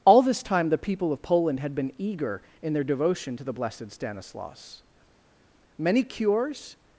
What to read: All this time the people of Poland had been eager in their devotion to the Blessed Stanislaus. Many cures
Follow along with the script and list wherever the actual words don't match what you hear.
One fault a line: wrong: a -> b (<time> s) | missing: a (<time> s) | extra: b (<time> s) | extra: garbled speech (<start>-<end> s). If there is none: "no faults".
no faults